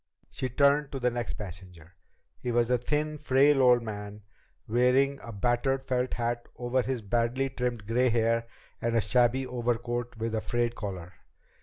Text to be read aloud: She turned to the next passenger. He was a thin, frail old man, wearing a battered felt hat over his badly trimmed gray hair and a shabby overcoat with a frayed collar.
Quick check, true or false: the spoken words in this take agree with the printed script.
true